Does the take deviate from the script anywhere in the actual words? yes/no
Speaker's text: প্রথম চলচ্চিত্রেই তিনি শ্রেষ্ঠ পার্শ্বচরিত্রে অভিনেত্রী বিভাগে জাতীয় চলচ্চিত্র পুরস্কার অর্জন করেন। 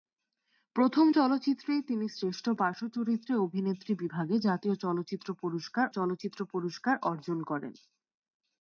yes